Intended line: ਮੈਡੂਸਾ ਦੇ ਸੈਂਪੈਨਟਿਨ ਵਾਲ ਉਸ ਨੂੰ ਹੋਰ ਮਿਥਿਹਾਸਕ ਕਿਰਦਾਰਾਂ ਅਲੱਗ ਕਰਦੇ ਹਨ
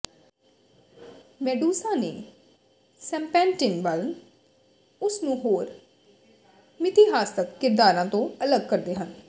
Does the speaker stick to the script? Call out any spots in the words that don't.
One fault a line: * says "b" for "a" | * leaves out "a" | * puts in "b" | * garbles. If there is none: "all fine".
* puts in "ਤੋਂ"